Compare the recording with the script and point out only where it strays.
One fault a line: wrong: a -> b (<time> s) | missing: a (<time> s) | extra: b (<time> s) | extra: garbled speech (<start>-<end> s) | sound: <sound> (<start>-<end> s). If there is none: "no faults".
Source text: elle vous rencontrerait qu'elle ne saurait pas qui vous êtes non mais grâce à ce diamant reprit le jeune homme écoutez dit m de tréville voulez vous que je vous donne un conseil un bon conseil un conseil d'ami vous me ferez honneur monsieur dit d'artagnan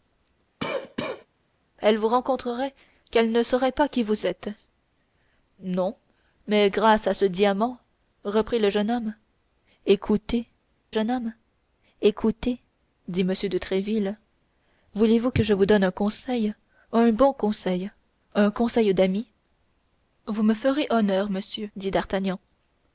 sound: cough (0.6-1.3 s)
extra: jeune homme écoutez (10.9 s)